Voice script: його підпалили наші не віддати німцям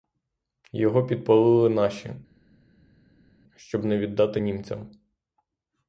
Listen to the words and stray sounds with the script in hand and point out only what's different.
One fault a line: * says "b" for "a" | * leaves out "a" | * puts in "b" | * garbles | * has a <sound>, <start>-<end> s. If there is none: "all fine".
* puts in "щоб"